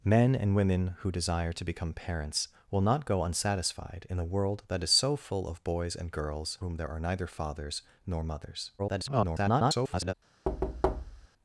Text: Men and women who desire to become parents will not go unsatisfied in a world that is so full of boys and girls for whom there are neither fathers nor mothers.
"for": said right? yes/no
no